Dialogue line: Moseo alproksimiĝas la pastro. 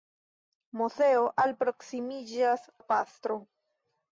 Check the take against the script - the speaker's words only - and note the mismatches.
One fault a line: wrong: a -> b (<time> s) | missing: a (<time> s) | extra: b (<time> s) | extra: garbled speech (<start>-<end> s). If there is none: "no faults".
no faults